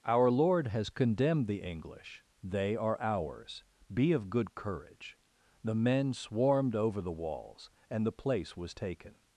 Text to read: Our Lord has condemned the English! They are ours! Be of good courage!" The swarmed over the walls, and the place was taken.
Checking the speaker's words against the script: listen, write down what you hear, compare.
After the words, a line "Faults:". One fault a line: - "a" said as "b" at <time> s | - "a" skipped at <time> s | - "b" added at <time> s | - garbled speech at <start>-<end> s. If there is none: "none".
Our Lord has condemned the English! They are ours! Be of good courage!" The men swarmed over the walls, and the place was taken.
Faults:
- "men" added at 5.8 s